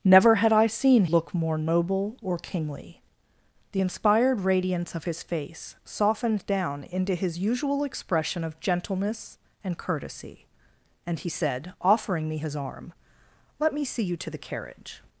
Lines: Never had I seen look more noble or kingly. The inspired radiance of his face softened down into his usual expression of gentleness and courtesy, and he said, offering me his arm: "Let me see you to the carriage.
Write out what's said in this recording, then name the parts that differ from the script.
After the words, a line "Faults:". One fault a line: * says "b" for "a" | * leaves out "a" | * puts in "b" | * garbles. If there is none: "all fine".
Never had I seen look more noble or kingly. The inspired radiance of his face softened down into his usual expression of gentleness and courtesy, and he said, offering me his arm: "Let me see you to the carriage.
Faults:
all fine